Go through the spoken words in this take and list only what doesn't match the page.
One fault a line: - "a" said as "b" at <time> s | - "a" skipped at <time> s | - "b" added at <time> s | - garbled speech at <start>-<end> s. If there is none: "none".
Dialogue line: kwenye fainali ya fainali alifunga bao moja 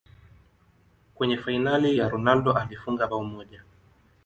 - "fainali" said as "ronaldo" at 2.1 s